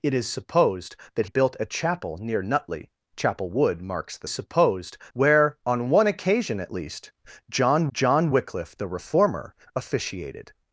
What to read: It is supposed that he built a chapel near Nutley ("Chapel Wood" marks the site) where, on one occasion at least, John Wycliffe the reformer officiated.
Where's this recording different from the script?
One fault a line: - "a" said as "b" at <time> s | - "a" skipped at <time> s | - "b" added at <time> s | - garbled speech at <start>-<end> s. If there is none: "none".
- "he" skipped at 1.3 s
- "site" said as "supposed" at 4.3 s
- "John" added at 7.9 s